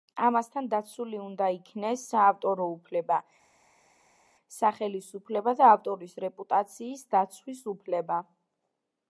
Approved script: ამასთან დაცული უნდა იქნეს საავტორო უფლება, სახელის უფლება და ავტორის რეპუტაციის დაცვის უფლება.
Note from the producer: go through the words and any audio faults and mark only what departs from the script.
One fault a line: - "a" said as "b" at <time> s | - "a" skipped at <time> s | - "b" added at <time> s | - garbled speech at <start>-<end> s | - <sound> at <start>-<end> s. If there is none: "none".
none